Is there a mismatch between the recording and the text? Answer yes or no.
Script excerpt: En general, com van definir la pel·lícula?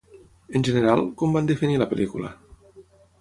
no